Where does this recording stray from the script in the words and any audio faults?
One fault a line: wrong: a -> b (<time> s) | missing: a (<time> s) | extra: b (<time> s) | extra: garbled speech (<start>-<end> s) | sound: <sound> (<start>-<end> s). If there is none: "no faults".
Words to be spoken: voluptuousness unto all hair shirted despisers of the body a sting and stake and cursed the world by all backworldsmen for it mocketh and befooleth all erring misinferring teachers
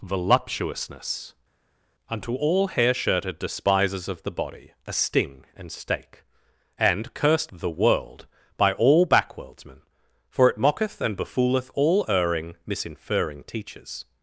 no faults